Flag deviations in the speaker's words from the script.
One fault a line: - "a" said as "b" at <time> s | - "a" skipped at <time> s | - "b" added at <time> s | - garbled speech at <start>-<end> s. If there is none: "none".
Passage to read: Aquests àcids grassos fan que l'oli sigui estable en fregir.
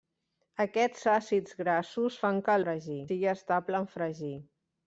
- "l'oli" said as "fregir" at 2.6 s